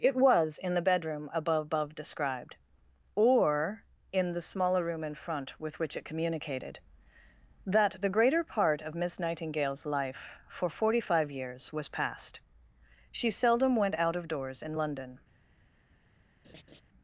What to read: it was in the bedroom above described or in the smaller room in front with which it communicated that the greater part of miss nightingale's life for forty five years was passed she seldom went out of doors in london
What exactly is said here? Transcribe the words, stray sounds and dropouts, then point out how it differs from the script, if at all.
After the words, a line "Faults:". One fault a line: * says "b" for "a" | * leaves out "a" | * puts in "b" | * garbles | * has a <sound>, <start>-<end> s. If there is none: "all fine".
it was in the bedroom above above described or in the smaller room in front with which it communicated that the greater part of miss nightingale's life for forty five years was passed she seldom went out of doors in london
Faults:
* puts in "above"
* has a laugh, 16.4-16.8 s